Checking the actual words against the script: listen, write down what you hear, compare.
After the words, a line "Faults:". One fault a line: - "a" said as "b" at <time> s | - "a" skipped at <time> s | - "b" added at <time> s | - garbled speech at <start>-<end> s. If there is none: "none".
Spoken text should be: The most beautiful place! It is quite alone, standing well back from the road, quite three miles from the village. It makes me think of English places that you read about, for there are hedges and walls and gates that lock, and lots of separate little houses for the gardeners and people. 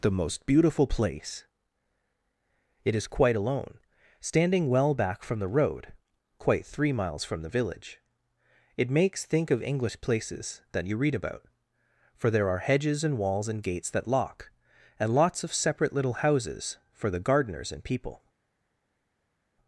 The most beautiful place! It is quite alone, standing well back from the road, quite three miles from the village. It makes think of English places that you read about, for there are hedges and walls and gates that lock, and lots of separate little houses for the gardeners and people.
Faults:
- "me" skipped at 9.2 s